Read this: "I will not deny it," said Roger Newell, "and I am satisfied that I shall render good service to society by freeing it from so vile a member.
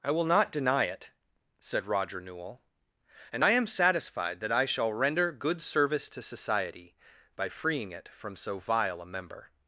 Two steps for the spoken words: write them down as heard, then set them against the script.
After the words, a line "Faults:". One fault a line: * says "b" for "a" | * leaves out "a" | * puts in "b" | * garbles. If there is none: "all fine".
"I will not deny it," said Roger Newell, "and I am satisfied that I shall render good service to society by freeing it from so vile a member.
Faults:
all fine